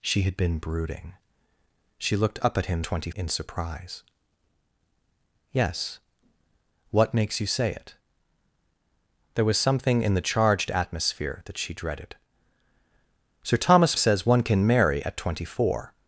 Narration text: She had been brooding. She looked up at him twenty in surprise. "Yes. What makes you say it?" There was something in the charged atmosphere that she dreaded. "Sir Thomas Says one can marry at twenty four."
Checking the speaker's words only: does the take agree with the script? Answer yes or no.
yes